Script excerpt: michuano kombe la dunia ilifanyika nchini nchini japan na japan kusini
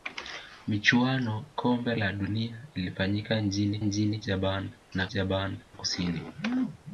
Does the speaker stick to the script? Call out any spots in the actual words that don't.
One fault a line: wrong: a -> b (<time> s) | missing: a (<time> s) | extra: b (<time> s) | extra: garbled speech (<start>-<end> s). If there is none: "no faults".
no faults